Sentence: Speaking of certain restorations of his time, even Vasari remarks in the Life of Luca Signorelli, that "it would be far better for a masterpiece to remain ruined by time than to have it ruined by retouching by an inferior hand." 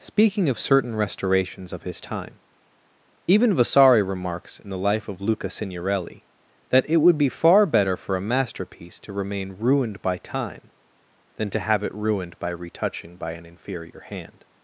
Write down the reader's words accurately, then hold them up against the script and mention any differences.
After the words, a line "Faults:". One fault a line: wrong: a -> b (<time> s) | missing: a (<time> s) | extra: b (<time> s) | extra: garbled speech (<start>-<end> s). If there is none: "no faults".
Speaking of certain restorations of his time, even Vasari remarks in the Life of Luca Signorelli, that "it would be far better for a masterpiece to remain ruined by time than to have it ruined by retouching by an inferior hand."
Faults:
no faults